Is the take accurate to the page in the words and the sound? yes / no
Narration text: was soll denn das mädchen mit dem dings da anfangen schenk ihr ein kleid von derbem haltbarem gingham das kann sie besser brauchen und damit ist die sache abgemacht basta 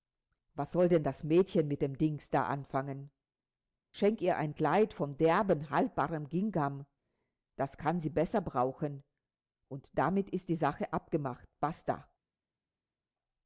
yes